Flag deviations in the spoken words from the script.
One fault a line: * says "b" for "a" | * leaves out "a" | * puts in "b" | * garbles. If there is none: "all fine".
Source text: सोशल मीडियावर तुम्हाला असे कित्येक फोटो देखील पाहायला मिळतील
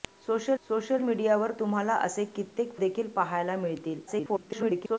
* puts in "सोशल"
* leaves out "फोटो"
* garbles